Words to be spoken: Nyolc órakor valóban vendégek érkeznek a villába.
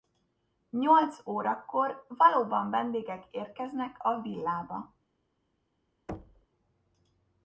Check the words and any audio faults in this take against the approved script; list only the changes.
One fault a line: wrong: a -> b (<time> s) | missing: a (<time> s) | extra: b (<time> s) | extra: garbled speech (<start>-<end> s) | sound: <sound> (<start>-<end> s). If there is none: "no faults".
sound: thud (6.1-6.5 s)